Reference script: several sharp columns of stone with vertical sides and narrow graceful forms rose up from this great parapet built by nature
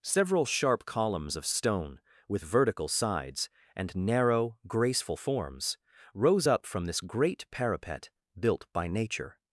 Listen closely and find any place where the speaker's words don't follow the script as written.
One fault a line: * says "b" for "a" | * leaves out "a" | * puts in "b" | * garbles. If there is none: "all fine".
all fine